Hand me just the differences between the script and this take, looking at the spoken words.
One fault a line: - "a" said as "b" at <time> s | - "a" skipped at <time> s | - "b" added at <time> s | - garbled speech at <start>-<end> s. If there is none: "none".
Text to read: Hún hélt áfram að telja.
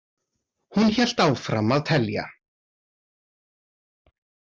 none